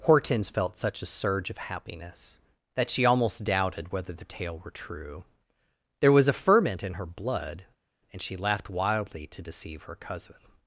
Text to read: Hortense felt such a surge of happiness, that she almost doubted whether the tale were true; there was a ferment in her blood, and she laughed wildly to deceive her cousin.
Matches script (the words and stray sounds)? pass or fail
pass